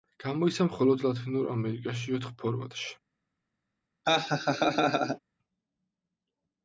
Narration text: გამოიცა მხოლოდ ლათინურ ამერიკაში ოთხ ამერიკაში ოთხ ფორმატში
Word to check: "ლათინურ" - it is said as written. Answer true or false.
true